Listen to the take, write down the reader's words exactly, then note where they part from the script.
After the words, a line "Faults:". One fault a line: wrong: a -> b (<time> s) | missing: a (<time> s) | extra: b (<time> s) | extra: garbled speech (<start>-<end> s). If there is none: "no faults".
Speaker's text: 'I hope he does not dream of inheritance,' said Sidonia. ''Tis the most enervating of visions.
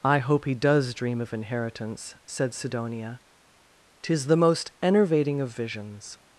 'I hope he does dream of inheritance,' said Sidonia. ''Tis the most enervating of visions.
Faults:
missing: not (0.9 s)